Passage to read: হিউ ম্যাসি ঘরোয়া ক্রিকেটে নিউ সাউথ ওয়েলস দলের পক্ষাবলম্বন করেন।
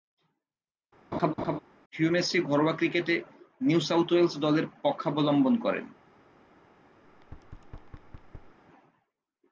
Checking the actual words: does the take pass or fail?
pass